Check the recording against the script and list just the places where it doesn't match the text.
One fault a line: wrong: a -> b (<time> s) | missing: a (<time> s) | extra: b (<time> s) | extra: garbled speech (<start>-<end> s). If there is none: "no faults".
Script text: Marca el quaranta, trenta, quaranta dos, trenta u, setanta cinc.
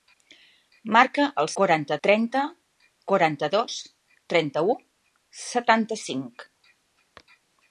no faults